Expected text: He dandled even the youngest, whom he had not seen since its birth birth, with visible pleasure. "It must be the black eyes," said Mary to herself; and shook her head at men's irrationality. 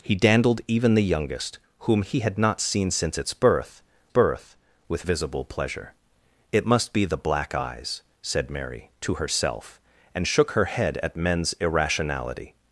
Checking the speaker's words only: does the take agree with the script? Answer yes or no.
yes